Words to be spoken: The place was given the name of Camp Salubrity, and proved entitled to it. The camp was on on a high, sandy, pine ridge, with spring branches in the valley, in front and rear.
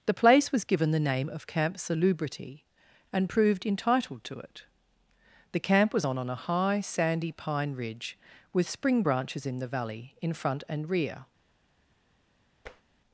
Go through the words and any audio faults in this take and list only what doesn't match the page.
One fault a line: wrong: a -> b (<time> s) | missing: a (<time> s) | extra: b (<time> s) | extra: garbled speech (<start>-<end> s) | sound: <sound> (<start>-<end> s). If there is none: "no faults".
sound: tap (12.7-12.8 s)